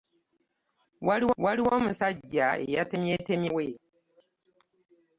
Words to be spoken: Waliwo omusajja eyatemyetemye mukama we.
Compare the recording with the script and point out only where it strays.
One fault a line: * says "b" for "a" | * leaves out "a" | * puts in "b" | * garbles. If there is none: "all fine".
* puts in "waliwo"
* leaves out "mukama"